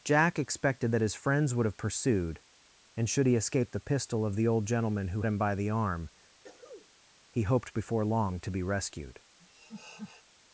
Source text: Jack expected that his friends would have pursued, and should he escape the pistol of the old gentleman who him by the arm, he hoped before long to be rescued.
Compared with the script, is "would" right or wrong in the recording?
right